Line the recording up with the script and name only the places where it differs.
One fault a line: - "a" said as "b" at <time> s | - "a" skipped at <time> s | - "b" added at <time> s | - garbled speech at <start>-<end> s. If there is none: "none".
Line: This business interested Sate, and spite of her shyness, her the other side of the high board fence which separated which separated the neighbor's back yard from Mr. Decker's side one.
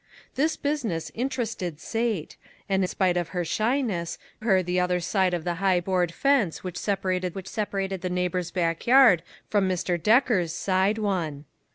none